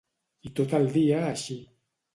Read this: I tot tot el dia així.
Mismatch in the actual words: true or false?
true